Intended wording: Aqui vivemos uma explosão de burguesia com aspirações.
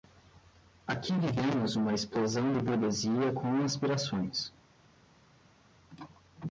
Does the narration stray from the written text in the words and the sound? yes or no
no